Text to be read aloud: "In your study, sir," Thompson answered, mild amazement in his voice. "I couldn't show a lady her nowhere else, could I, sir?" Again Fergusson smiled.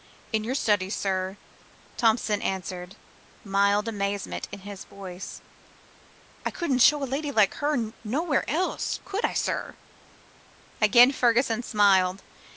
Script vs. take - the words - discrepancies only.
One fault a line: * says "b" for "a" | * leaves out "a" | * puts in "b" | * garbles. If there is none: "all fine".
* puts in "like"